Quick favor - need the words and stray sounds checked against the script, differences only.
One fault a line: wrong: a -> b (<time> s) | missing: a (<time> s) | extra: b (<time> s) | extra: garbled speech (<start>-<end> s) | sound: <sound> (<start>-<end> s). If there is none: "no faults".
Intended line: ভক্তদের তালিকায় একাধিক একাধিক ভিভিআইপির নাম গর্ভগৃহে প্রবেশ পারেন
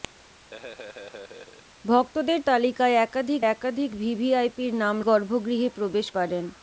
sound: laugh (0.5-1.6 s)